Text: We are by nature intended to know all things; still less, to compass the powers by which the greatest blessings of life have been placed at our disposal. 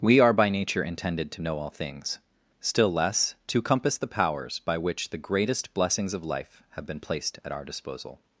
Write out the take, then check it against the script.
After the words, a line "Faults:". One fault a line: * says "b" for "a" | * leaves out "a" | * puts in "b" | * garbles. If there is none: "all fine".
We are by nature intended to know all things; still less, to compass the powers by which the greatest blessings of life have been placed at our disposal.
Faults:
all fine